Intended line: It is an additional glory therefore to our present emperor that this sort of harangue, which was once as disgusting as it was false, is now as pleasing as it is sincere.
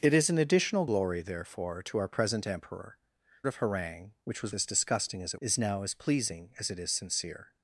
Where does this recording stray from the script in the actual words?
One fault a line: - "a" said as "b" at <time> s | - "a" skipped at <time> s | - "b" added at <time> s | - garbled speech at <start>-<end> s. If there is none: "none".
- "that this sort" skipped at 3.0 s
- "once" skipped at 4.5 s
- "was false" skipped at 5.4 s